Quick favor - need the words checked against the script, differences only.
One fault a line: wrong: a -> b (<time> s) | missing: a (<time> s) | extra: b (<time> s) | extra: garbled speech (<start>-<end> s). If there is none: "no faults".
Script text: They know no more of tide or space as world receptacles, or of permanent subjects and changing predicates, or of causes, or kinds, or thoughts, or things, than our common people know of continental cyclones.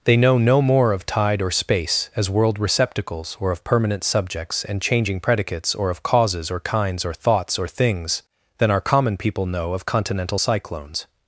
no faults